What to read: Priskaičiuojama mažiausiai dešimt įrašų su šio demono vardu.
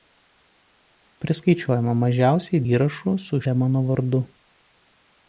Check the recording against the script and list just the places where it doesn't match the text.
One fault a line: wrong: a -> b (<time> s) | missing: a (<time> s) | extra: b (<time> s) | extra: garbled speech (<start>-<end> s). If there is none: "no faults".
missing: dešimt (2.6 s)
missing: šio (3.4 s)